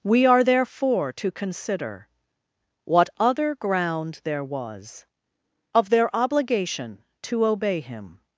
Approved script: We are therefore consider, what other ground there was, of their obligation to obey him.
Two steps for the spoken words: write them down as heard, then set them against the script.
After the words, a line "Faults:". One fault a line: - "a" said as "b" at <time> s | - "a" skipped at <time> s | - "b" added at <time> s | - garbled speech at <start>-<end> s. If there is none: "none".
We are therefore to consider, what other ground there was, of their obligation to obey him.
Faults:
- "to" added at 1.1 s